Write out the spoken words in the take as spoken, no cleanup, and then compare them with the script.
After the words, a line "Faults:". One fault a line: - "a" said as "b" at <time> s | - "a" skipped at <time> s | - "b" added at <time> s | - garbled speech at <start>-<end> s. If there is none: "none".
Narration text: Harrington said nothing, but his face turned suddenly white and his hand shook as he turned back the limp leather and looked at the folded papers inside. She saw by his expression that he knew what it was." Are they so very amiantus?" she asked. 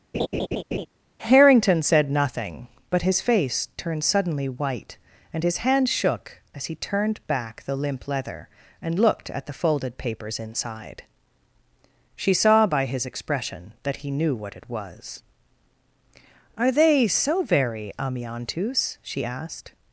Harrington said nothing, but his face turned suddenly white and his hand shook as he turned back the limp leather and looked at the folded papers inside. She saw by his expression that he knew what it was." Are they so very amiantus?" she asked.
Faults:
none